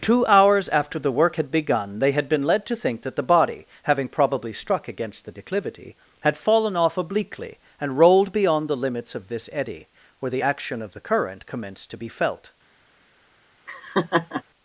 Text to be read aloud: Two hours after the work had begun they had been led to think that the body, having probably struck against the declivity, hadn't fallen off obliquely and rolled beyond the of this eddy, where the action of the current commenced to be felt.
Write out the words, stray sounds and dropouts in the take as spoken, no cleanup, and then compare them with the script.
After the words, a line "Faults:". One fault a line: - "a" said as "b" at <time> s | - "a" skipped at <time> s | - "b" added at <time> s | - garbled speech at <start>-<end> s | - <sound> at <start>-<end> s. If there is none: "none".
Two hours after the work had begun they had been led to think that the body, having probably struck against the declivity, had fallen off obliquely and rolled beyond the limits of this eddy, where the action of the current commenced to be felt.
Faults:
- "hadn't" said as "had" at 6.2 s
- "limits" added at 8.8 s
- laugh at 13.7-14.4 s